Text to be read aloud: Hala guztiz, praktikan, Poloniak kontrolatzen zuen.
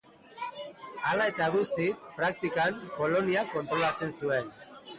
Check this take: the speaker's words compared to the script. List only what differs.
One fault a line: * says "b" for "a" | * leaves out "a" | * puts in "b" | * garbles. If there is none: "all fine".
* puts in "eta"